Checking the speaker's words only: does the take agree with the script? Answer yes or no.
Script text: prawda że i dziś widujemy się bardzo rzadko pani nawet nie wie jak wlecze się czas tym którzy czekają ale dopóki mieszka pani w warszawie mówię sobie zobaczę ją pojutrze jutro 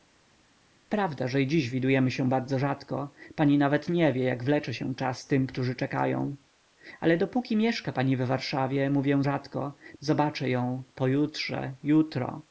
no